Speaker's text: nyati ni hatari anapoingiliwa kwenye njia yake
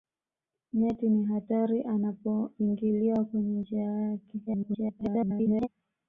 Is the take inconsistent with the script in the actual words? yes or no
yes